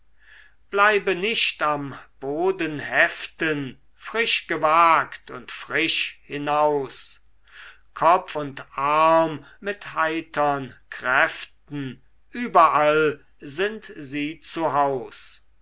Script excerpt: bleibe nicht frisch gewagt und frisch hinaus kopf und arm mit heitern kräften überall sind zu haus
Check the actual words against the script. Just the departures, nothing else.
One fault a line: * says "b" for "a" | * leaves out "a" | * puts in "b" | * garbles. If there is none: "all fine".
* puts in "am boden heften"
* puts in "sie"